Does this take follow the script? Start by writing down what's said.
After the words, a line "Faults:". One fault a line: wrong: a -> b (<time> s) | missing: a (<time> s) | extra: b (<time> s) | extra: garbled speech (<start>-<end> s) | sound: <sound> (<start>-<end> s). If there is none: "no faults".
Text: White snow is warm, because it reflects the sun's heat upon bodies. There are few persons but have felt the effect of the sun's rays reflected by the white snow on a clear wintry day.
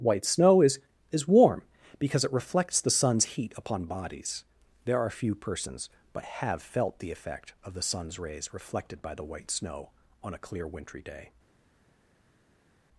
White snow is is warm, because it reflects the sun's heat upon bodies. There are few persons but have felt the effect of the sun's rays reflected by the white snow on a clear wintry day.
Faults:
extra: is (1.1 s)